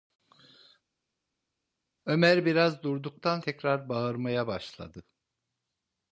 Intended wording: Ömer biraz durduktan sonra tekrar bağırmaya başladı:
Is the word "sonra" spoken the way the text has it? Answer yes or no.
no